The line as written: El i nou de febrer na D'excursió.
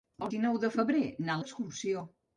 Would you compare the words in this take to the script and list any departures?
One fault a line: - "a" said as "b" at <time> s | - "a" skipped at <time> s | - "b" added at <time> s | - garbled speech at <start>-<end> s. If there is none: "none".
none